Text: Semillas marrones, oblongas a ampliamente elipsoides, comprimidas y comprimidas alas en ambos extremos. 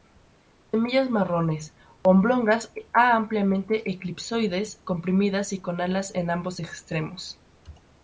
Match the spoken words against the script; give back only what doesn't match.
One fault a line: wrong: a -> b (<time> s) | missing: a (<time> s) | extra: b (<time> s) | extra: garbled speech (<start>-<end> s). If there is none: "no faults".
wrong: comprimidas -> con (5.6 s)